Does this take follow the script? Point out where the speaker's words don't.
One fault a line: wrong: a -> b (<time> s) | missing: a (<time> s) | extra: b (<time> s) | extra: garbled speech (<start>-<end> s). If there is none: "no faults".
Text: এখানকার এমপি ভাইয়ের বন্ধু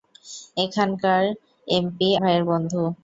no faults